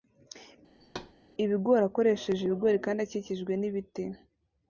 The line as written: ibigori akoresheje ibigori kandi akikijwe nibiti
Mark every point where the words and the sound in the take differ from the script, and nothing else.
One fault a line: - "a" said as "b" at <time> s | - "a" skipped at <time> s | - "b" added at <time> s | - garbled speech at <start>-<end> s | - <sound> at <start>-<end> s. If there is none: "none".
- thud at 0.8-1.1 s